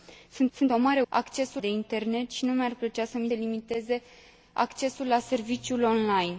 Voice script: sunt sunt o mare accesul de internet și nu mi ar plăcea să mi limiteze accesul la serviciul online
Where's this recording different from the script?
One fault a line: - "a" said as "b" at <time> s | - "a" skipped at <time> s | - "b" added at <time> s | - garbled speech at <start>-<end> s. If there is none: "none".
none